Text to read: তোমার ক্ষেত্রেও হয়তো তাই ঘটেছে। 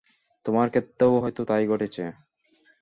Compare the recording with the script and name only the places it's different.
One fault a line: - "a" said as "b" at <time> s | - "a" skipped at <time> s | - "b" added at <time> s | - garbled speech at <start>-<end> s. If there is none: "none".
none